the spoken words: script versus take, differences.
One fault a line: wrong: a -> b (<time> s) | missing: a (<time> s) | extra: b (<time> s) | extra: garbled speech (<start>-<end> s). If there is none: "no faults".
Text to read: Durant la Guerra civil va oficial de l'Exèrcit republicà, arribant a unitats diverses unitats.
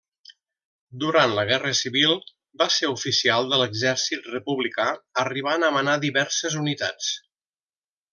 extra: ser (2.8 s)
wrong: unitats -> manar (5.8 s)